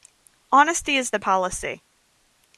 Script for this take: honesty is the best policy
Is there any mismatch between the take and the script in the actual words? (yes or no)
yes